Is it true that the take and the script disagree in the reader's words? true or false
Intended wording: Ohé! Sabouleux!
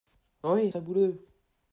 false